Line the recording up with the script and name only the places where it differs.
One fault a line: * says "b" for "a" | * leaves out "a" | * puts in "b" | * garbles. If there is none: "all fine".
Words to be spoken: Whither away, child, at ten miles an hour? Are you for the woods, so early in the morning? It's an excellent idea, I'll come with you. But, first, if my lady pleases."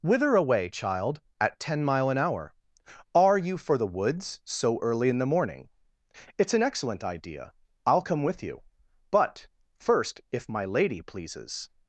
* says "mile" for "miles"